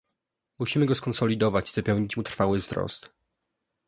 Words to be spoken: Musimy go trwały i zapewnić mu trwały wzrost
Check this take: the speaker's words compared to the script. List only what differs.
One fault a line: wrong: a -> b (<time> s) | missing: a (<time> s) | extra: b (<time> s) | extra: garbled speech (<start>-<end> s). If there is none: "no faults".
wrong: trwały -> skonsolidować (0.9 s)